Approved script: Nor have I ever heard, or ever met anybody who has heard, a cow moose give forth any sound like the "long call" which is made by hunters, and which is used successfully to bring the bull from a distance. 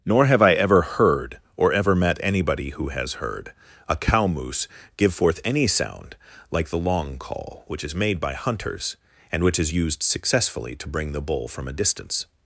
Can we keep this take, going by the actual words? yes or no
yes